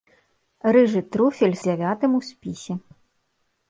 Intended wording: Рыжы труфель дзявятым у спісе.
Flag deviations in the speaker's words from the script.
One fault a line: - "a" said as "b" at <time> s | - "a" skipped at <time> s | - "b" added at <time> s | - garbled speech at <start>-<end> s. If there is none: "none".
none